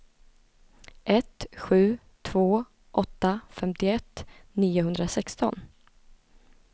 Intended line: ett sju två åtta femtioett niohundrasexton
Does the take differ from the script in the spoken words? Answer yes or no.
no